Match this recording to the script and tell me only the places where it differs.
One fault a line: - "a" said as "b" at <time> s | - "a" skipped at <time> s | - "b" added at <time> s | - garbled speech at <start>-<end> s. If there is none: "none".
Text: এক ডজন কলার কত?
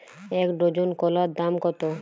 - "দাম" added at 1.3 s